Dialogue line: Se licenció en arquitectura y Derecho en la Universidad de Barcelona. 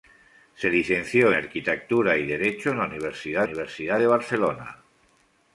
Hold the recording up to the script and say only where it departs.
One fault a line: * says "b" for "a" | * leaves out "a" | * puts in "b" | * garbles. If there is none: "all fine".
* leaves out "en"
* puts in "Universidad"